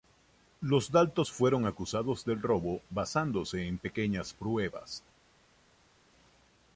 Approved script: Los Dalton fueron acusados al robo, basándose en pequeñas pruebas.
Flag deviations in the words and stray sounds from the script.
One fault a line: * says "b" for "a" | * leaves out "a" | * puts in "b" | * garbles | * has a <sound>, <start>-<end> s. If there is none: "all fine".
* says "del" for "al"